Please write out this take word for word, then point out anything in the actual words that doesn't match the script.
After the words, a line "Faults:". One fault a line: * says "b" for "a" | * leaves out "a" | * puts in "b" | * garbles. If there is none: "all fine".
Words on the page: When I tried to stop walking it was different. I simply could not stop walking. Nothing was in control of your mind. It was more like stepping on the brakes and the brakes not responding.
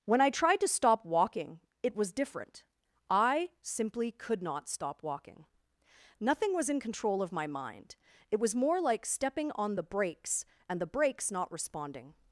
When I tried to stop walking it was different. I simply could not stop walking. Nothing was in control of my mind. It was more like stepping on the brakes and the brakes not responding.
Faults:
* says "my" for "your"